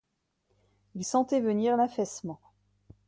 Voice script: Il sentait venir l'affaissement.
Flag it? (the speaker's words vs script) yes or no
no